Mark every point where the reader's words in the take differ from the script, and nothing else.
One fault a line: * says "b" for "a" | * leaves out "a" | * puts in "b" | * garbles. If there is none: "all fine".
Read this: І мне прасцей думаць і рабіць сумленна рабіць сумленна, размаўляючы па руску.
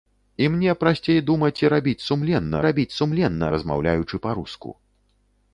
all fine